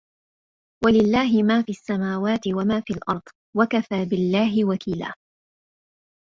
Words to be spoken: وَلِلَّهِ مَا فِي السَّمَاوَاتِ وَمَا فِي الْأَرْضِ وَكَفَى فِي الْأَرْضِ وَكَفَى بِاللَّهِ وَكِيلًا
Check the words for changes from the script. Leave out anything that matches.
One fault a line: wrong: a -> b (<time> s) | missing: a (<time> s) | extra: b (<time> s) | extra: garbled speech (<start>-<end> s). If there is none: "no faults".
missing: فِي الْأَرْضِ وَكَفَى (4.0 s)